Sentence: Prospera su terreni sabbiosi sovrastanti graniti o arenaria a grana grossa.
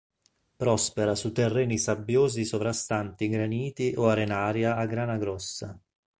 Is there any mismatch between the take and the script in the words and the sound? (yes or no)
no